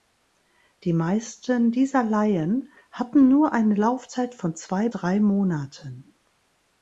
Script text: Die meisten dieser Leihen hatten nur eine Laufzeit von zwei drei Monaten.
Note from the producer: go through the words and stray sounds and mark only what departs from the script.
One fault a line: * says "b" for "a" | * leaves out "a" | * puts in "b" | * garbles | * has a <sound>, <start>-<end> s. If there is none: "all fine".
all fine